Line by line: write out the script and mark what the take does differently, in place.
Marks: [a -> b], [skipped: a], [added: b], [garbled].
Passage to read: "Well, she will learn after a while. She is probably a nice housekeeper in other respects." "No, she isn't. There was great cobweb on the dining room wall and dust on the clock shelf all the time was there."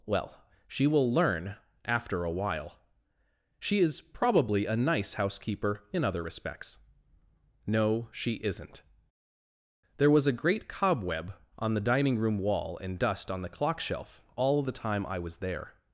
"Well, she will learn after a while. She is probably a nice housekeeper in other respects." "No, she isn't. There was [added: a] great cobweb on the dining room wall and dust on the clock shelf all the time [added: I] was there."